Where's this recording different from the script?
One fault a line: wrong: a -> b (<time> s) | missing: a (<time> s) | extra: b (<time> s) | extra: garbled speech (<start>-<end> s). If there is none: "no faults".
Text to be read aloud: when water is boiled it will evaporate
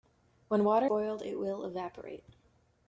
missing: is (0.9 s)